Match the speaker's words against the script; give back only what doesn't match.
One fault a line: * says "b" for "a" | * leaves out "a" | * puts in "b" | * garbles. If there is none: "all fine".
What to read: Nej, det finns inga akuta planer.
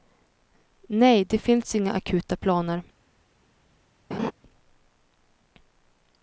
all fine